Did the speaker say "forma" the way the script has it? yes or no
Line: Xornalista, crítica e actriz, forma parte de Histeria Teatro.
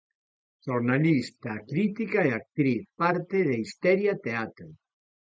no